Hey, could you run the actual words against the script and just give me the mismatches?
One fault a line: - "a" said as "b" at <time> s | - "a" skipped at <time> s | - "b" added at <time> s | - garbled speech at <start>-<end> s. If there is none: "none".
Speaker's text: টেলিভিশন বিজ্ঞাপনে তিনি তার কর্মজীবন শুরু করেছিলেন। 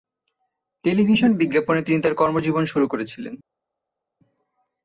none